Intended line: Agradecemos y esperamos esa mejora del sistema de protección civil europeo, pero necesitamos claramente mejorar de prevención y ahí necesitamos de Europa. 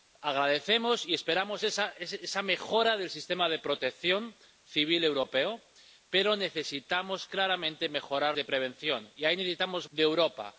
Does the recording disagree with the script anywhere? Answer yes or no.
no